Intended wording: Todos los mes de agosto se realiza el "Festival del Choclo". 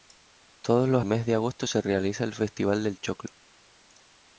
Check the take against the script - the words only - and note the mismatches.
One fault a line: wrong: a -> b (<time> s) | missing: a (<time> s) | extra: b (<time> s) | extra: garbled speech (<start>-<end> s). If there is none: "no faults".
no faults